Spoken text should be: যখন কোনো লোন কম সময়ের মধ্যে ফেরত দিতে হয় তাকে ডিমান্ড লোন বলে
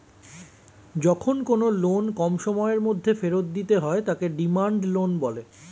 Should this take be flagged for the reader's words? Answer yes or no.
no